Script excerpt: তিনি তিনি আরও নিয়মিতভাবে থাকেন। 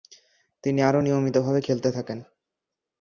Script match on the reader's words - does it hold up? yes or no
no